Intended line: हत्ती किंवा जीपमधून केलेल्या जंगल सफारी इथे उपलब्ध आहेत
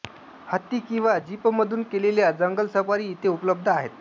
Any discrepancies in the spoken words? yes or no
no